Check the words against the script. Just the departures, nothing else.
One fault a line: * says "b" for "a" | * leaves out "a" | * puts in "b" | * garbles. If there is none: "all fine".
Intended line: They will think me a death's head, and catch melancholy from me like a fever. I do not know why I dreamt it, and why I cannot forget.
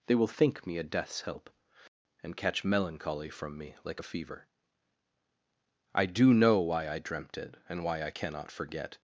* says "help" for "head"
* leaves out "not"